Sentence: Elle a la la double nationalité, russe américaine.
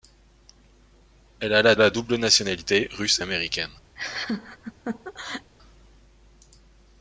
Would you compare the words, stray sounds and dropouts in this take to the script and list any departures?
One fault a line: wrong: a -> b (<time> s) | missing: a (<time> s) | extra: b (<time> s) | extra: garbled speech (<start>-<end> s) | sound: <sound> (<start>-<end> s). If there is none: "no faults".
sound: laugh (4.0-5.5 s)